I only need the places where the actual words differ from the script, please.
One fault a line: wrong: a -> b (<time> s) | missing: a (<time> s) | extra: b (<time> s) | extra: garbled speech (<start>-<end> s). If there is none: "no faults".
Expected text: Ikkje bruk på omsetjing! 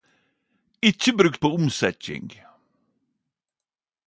no faults